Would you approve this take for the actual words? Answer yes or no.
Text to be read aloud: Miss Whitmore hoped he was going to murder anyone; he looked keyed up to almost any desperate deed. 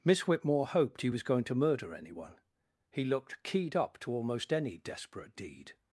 yes